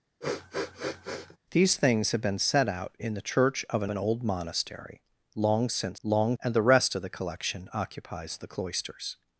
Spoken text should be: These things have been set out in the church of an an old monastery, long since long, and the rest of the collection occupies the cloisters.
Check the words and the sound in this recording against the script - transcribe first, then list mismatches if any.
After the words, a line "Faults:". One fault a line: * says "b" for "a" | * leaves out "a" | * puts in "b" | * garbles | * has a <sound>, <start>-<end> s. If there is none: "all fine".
These things have been set out in the church of an an old monastery, long since long, and the rest of the collection occupies the cloisters.
Faults:
* has a sniff, 0.2-1.4 s